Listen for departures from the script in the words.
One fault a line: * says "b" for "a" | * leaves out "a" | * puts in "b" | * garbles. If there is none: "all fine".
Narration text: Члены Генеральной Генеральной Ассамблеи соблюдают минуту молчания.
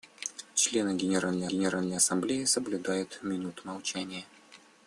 all fine